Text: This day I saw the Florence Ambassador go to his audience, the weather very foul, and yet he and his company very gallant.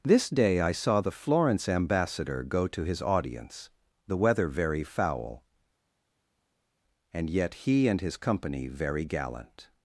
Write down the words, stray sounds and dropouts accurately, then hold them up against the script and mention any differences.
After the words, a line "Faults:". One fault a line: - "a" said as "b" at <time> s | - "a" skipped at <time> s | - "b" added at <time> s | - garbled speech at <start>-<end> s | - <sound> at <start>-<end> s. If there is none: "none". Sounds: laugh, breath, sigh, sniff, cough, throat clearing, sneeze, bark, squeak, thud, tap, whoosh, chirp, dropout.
This day I saw the Florence Ambassador go to his audience, the weather very foul, and yet he and his company very gallant.
Faults:
none